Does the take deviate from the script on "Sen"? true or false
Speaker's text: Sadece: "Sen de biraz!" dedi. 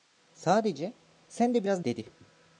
false